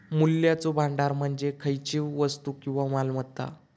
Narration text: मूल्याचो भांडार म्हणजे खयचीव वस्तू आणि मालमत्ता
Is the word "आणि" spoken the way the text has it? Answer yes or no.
no